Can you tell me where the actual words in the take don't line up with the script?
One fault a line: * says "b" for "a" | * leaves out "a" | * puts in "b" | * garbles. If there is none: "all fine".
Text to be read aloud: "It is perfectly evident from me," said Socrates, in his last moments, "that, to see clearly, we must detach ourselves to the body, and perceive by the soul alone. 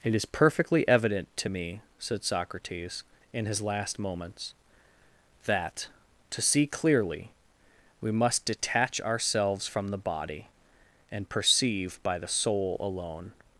* says "to" for "from"
* says "from" for "to"